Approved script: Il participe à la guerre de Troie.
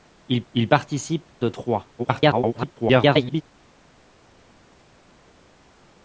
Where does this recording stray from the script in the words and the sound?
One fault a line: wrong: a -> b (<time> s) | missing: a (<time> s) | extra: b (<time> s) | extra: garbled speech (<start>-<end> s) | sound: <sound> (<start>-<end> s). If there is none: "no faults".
extra: il (0.5 s)
missing: la guerre (1.4 s)
extra: garbled speech (2.0-3.4 s)